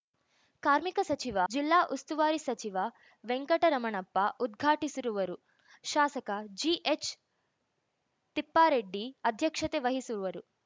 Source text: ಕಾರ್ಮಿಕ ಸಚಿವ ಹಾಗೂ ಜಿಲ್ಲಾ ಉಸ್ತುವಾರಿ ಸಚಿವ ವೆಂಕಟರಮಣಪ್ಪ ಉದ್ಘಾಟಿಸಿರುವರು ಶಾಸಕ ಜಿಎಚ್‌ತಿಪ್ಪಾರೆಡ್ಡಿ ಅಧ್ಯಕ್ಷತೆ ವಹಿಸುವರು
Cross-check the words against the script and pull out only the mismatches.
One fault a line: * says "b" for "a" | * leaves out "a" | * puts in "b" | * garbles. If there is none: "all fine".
* leaves out "ಹಾಗೂ"